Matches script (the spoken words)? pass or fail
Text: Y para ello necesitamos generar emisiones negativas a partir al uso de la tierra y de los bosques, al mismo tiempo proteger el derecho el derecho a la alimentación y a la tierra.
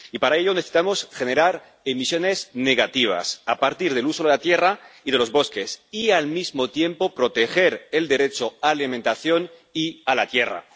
fail